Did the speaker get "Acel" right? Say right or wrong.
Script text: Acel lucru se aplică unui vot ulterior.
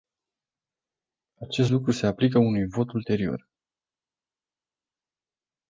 wrong